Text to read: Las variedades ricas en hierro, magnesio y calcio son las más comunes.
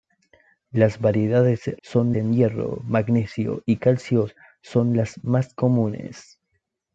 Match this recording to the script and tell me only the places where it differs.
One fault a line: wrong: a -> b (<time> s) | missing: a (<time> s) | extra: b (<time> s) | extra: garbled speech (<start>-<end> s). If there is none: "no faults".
wrong: ricas -> son (1.8 s)